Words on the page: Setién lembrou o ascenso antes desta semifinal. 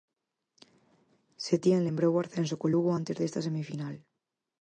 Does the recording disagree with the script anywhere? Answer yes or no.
yes